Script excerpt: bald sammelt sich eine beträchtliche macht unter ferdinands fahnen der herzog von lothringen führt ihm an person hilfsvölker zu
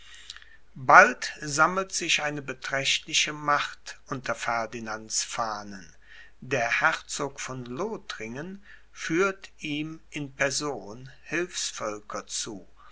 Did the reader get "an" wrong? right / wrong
wrong